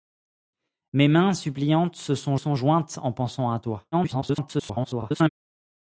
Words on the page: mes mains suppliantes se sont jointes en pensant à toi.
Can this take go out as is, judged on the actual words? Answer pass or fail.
fail